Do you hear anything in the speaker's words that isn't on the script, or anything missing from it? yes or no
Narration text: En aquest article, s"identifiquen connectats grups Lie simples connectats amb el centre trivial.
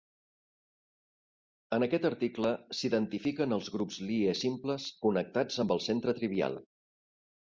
yes